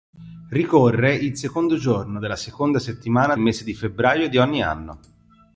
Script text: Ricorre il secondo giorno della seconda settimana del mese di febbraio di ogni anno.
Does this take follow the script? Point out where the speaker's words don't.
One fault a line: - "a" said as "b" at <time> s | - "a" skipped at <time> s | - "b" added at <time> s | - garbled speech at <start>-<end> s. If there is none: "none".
- "del" skipped at 3.4 s